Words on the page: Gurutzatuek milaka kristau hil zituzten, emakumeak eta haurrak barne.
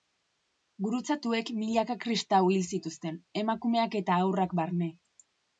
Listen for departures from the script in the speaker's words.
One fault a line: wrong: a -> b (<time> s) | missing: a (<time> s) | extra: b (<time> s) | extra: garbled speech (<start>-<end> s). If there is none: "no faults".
no faults